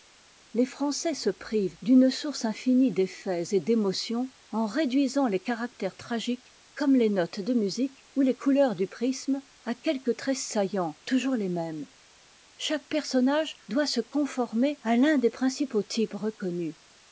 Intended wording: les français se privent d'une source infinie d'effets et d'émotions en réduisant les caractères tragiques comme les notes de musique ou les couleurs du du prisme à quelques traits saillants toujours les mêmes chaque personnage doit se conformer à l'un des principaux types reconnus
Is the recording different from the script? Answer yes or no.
yes